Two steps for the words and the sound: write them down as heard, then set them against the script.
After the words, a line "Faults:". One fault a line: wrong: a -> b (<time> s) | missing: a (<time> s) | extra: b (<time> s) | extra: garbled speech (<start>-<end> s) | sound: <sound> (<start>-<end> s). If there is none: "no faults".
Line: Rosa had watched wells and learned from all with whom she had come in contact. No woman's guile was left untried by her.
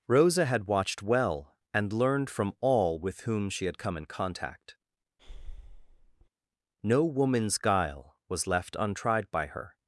Rosa had watched well and learned from all with whom she had come in contact. No woman's guile was left untried by her.
Faults:
wrong: wells -> well (1.0 s)
sound: breath (5.2-6.3 s)